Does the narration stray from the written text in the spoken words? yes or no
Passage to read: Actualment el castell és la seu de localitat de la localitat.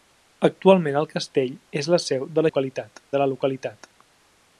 no